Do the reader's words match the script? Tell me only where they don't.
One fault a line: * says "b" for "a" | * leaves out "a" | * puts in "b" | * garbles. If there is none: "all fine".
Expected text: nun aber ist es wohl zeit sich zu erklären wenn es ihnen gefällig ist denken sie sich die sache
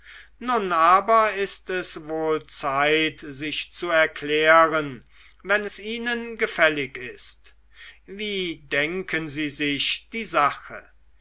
* puts in "wie"